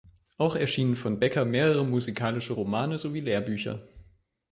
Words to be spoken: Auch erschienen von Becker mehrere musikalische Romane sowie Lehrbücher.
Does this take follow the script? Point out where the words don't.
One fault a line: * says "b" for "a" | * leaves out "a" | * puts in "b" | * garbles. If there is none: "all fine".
all fine